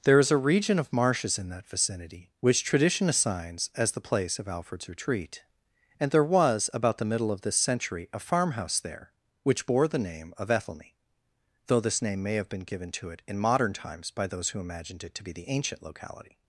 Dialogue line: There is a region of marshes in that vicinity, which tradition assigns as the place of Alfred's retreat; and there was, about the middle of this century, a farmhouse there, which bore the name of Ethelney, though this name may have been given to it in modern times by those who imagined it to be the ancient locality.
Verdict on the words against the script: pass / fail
pass